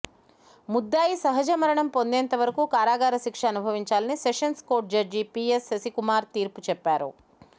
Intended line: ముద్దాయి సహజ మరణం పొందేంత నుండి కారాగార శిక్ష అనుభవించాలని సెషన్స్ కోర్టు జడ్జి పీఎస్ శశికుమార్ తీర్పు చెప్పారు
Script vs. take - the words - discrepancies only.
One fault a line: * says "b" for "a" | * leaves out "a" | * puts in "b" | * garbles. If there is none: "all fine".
* says "వరకు" for "నుండి"